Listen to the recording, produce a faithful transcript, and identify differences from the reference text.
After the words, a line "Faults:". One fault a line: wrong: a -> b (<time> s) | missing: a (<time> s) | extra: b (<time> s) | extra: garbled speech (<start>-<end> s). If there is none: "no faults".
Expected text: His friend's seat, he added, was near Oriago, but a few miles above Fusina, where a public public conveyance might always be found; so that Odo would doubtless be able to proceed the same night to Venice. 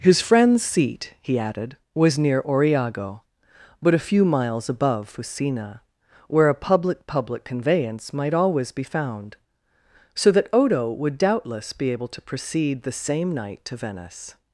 His friend's seat, he added, was near Oriago, but a few miles above Fusina, where a public public conveyance might always be found; so that Odo would doubtless be able to proceed the same night to Venice.
Faults:
no faults